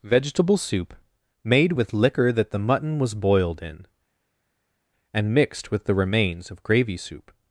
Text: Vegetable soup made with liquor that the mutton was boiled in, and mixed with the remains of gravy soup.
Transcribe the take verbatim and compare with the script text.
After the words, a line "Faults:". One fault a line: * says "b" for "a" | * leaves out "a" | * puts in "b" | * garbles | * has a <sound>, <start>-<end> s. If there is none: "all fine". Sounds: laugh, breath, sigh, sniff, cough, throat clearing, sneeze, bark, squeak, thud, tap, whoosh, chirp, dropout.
Vegetable soup made with liquor that the mutton was boiled in, and mixed with the remains of gravy soup.
Faults:
all fine